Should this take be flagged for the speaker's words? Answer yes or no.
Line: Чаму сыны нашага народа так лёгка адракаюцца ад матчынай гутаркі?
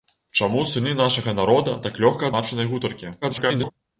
yes